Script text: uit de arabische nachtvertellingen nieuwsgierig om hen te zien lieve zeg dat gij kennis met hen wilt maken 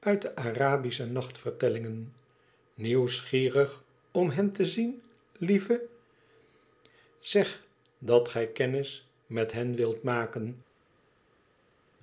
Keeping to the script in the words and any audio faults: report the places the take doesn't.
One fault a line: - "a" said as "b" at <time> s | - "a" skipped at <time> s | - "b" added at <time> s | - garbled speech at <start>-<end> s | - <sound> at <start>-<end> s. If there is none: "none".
none